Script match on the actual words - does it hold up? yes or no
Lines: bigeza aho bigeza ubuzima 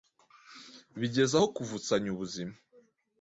no